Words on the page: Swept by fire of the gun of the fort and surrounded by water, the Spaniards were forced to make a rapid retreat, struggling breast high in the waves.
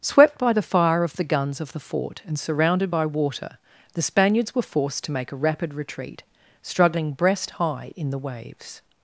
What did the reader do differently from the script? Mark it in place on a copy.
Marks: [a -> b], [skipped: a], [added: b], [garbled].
Swept by [added: the] fire of the [gun -> guns] of the fort and surrounded by water, the Spaniards were forced to make a rapid retreat, struggling breast high in the waves.